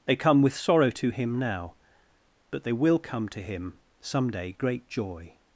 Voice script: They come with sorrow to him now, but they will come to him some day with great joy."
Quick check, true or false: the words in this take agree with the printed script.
false